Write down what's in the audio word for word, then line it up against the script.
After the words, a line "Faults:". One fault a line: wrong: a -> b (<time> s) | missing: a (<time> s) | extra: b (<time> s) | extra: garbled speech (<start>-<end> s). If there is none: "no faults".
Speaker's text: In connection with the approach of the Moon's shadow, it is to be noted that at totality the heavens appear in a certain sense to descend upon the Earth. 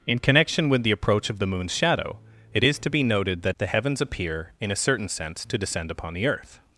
In connection with the approach of the Moon's shadow, it is to be noted that the heavens appear in a certain sense to descend upon the Earth.
Faults:
missing: at totality (3.5 s)